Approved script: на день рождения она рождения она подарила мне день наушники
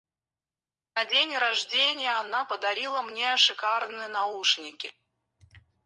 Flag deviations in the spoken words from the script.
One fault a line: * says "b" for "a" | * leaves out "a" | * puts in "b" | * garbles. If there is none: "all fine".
* leaves out "рождения она"
* says "шикарные" for "день"